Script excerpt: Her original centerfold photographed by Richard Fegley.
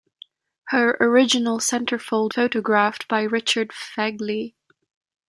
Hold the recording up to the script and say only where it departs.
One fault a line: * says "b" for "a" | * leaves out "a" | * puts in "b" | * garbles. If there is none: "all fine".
all fine